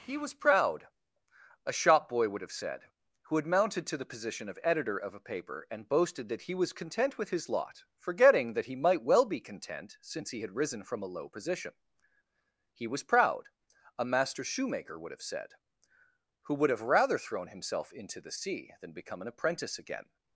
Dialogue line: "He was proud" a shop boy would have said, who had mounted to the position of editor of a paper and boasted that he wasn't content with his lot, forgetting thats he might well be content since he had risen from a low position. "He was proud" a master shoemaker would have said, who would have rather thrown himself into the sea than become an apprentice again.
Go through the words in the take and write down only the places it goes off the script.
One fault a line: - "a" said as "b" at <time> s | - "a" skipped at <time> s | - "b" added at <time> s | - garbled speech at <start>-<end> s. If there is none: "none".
- "wasn't" said as "was" at 6.5 s
- "thats" said as "that" at 8.5 s